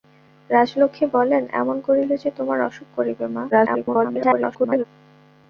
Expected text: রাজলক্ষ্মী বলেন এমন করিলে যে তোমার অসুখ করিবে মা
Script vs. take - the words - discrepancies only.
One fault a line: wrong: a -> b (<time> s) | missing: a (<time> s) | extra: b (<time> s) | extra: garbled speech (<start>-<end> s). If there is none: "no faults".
extra: garbled speech (3.5-4.8 s)